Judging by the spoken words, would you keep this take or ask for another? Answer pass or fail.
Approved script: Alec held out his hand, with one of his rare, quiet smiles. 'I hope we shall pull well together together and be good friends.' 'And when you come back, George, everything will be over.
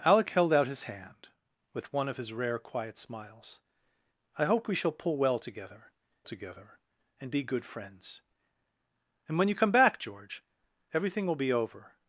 pass